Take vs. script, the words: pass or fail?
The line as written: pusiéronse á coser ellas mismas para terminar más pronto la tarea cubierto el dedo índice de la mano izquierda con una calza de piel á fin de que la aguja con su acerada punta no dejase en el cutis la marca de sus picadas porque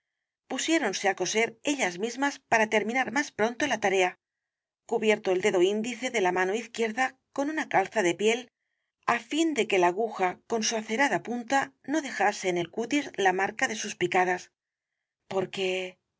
pass